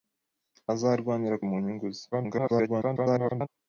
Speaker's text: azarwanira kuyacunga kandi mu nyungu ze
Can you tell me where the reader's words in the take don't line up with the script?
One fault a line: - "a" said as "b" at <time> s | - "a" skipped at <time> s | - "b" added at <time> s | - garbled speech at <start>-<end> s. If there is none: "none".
- "kuyacunga kandi" skipped at 1.4 s
- garbled speech at 2.1-3.5 s